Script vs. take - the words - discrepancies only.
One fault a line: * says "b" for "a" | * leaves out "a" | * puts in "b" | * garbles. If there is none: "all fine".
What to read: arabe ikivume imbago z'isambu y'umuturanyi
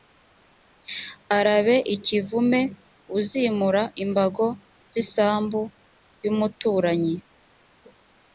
* puts in "uzimura"